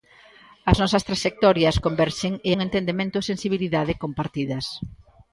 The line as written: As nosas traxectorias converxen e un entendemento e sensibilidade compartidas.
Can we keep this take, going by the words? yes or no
yes